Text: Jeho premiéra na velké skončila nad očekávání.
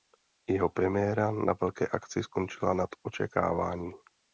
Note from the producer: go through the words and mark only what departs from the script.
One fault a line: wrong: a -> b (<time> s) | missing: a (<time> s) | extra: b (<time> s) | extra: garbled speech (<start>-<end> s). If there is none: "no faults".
extra: akci (1.9 s)